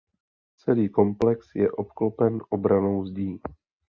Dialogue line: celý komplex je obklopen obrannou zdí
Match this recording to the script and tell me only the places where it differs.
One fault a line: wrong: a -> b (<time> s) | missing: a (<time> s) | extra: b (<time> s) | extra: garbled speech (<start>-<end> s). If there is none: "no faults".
no faults